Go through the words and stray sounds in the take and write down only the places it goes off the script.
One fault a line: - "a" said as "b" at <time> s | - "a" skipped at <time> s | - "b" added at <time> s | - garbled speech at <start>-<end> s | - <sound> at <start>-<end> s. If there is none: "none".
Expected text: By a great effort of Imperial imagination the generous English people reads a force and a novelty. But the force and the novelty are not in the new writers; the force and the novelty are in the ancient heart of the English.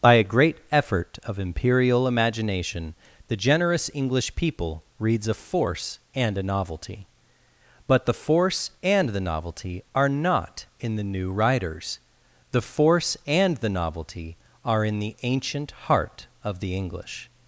none